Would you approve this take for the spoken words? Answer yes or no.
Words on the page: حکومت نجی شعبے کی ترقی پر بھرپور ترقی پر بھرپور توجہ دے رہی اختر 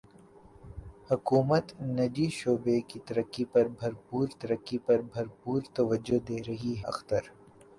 yes